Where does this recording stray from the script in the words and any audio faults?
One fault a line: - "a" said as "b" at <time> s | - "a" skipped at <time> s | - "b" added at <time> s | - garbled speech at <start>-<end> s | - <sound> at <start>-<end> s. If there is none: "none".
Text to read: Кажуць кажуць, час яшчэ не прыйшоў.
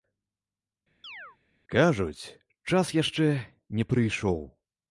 - chirp at 1.0-1.4 s
- "кажуць" skipped at 2.2 s